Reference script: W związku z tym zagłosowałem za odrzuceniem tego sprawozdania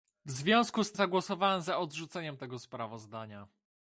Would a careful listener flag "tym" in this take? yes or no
yes